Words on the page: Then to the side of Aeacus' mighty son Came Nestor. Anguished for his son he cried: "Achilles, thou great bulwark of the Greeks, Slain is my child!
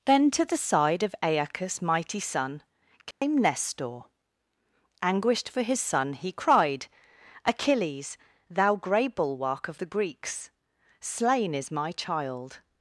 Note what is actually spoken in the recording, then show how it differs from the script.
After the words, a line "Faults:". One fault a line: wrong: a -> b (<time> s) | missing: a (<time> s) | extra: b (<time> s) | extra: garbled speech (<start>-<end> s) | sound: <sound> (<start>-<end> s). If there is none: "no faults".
Then to the side of Aeacus' mighty son Came Nestor. Anguished for his son he cried: "Achilles, thou grey bulwark of the Greeks, Slain is my child!
Faults:
sound: dropout (3.1-3.2 s)
wrong: great -> grey (8.8 s)